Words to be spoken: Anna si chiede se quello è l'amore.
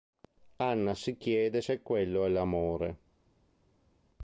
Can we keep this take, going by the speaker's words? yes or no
yes